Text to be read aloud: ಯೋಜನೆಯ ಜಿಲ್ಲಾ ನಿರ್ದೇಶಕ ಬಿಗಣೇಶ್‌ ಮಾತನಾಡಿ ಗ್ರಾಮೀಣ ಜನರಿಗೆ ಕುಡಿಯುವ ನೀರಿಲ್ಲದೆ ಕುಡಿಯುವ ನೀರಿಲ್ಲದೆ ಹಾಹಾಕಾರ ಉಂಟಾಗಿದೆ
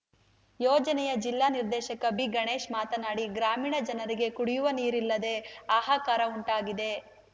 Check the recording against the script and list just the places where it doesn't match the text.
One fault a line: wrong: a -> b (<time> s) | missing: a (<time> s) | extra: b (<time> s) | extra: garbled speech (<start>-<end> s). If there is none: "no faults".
missing: ಕುಡಿಯುವ ನೀರಿಲ್ಲದೆ (5.3 s)